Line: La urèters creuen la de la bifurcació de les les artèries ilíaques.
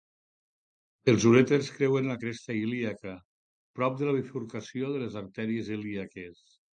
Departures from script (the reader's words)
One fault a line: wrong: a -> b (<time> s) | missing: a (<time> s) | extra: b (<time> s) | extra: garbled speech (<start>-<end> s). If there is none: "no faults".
wrong: La -> Els (1.1 s)
extra: cresta ilíaca prop (2.2 s)
missing: les (5.2 s)